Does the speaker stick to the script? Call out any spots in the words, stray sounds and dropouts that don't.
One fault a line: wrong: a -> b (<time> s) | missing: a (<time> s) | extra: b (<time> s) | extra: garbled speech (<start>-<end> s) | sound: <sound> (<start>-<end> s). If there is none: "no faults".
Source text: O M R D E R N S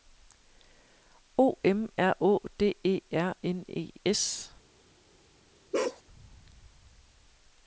extra: Å (2.2 s)
extra: E (3.7 s)
sound: bark (5.7-6.0 s)